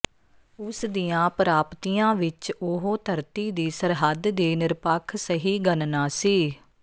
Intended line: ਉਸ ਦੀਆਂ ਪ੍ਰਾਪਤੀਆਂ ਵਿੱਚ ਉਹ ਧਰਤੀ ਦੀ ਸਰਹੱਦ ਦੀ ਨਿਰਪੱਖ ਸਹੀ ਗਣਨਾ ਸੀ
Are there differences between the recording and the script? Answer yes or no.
no